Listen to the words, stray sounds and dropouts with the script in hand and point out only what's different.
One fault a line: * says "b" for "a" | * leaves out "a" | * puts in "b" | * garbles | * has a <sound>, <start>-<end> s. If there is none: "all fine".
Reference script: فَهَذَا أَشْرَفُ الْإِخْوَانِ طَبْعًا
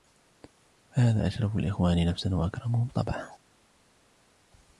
* puts in "نَفْسًا وَأَكْرَمُهُمْ"